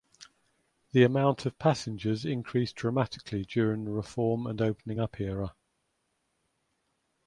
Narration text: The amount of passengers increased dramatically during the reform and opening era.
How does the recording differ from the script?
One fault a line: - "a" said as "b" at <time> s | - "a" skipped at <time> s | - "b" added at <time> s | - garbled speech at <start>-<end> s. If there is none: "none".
- "up" added at 5.0 s